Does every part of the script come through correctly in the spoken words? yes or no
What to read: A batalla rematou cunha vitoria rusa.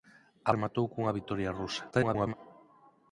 no